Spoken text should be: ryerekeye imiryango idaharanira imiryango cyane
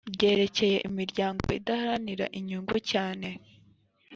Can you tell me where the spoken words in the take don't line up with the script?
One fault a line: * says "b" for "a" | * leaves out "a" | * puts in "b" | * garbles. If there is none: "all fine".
* says "inyungu" for "imiryango"